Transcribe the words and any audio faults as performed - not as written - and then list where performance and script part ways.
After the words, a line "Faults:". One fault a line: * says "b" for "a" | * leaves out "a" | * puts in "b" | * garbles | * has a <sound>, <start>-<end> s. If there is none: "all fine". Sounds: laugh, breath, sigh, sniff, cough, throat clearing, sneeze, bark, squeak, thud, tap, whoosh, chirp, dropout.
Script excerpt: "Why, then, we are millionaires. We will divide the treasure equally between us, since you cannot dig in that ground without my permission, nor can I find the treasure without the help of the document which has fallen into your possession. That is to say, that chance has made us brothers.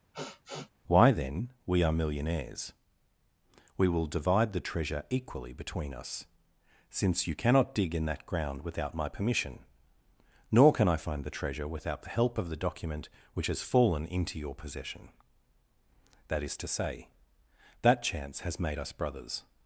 "Why, then, we are millionaires. We will divide the treasure equally between us, since you cannot dig in that ground without my permission, nor can I find the treasure without the help of the document which has fallen into your possession. That is to say, that chance has made us brothers.
Faults:
* has a sniff, 0.1-0.7 s